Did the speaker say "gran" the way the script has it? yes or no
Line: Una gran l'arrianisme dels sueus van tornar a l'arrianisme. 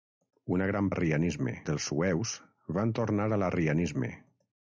yes